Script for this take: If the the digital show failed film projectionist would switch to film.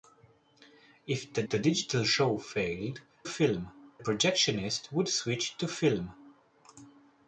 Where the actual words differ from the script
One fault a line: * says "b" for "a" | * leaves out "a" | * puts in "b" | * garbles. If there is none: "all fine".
all fine